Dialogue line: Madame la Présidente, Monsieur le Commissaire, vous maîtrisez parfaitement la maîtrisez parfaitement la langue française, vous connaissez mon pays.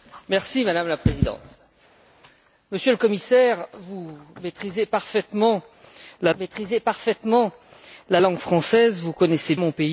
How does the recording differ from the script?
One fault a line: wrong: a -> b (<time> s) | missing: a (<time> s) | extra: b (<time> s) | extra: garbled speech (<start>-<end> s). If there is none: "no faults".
no faults